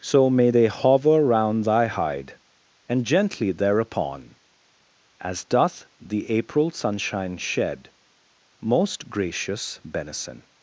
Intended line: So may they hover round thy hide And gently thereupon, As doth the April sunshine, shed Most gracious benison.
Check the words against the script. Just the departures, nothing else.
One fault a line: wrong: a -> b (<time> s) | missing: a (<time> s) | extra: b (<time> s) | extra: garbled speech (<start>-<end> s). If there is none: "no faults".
no faults